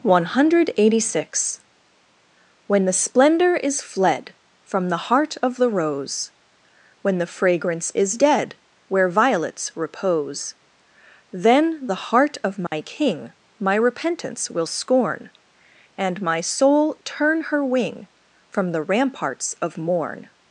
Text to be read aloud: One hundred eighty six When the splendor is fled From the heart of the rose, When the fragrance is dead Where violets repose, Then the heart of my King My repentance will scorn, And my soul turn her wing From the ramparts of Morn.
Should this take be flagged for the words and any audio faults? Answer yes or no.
yes